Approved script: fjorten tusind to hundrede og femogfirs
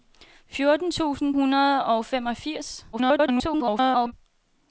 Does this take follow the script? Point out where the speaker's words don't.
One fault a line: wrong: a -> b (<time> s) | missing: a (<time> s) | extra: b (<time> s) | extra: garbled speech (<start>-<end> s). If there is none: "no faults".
missing: to (1.4 s)
extra: garbled speech (2.9-4.1 s)